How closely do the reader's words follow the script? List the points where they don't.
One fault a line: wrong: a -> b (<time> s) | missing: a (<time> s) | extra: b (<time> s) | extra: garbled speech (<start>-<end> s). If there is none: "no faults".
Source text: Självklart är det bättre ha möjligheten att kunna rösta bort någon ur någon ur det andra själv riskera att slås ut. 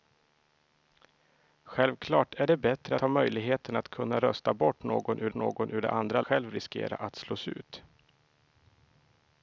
no faults